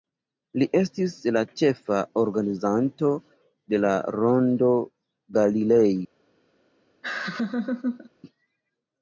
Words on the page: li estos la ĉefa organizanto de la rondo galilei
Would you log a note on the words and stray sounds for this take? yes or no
yes